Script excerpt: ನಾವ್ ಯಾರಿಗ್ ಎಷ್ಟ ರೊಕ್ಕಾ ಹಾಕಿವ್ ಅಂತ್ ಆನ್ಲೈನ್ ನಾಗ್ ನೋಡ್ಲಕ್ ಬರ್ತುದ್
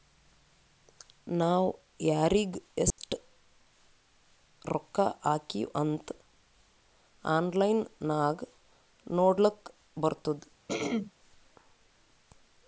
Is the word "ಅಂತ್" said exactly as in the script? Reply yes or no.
yes